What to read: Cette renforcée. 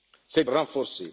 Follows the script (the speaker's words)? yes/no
yes